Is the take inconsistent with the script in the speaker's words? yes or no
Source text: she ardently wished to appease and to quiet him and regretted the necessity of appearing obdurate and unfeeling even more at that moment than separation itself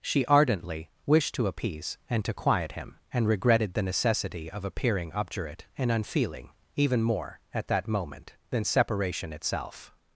no